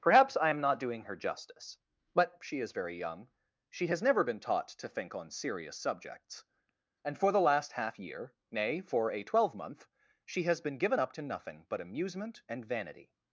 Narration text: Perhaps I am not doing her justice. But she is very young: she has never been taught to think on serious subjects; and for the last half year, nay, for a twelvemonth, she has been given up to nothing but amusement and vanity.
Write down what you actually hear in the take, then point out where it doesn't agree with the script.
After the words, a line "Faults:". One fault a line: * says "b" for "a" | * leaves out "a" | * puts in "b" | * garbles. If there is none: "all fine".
Perhaps I am not doing her justice. But she is very young: she has never been taught to think on serious subjects; and for the last half year, nay, for a twelvemonth, she has been given up to nothing but amusement and vanity.
Faults:
all fine